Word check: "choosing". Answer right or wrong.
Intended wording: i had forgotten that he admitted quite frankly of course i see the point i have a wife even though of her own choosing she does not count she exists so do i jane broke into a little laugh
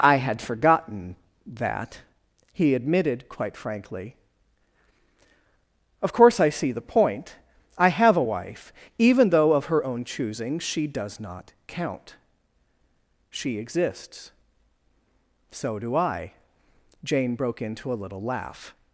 right